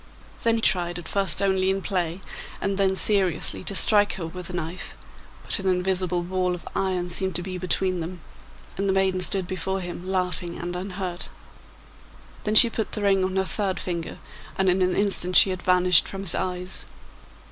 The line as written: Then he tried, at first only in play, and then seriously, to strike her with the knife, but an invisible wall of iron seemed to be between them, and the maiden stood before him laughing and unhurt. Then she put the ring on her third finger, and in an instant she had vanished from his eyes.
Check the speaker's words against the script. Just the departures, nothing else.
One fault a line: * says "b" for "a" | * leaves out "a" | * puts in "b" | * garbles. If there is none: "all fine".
* leaves out "he"